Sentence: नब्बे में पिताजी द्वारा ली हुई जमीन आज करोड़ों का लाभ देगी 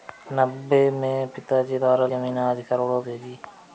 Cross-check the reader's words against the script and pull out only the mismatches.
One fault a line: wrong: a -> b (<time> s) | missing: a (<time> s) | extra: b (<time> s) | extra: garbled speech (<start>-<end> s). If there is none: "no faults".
missing: ली हुई (2.1 s)
missing: का लाभ (3.0 s)